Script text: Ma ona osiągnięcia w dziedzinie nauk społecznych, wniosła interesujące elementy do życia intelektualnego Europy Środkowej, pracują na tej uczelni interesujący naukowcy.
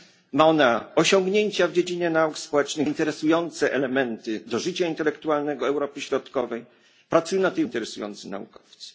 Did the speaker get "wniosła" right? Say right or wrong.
wrong